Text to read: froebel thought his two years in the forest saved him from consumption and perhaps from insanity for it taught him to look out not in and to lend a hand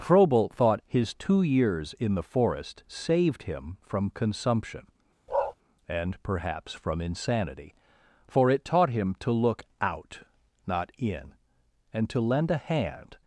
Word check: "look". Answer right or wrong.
right